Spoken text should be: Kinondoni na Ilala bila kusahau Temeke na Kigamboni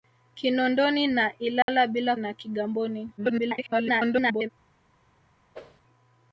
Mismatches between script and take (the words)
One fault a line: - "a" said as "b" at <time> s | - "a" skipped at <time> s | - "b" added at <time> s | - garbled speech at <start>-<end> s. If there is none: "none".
- "kusahau Temeke" skipped at 2.1 s
- garbled speech at 3.2-4.5 s